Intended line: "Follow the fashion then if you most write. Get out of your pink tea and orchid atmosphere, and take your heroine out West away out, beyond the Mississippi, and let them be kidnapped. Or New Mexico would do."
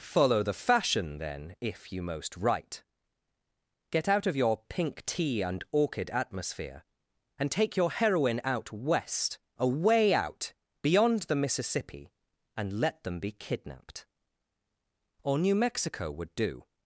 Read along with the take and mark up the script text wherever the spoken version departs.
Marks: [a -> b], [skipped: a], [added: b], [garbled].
"Follow the fashion then if you most write. Get out of your pink tea and orchid atmosphere, and take your heroine out West away out, beyond the Mississippi, and let them be kidnapped. Or New Mexico would do."